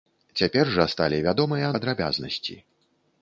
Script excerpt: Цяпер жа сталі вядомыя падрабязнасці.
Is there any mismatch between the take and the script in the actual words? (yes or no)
no